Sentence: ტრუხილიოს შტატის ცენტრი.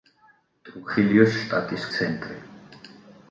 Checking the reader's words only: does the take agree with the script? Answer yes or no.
yes